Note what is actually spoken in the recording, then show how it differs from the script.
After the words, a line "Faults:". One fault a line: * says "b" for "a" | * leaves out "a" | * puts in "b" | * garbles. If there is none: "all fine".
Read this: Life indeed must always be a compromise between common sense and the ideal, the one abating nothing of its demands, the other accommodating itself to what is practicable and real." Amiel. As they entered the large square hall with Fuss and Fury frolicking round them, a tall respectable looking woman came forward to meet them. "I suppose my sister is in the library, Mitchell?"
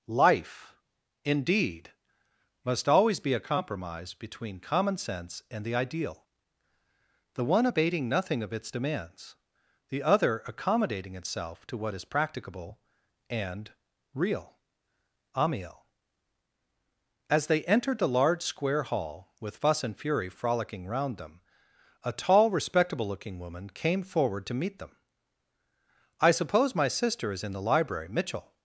Life indeed must always be a compromise between common sense and the ideal, the one abating nothing of its demands, the other accommodating itself to what is practicable and real." Amiel. As they entered the large square hall with Fuss and Fury frolicking round them, a tall respectable looking woman came forward to meet them. "I suppose my sister is in the library, Mitchell?"
Faults:
all fine